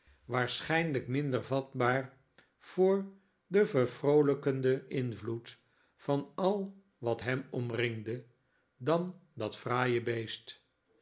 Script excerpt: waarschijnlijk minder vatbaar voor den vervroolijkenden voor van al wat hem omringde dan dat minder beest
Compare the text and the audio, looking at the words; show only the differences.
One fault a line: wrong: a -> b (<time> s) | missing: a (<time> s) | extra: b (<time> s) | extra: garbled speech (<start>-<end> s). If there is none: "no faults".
wrong: voor -> invloed (4.9 s)
wrong: minder -> fraaie (9.6 s)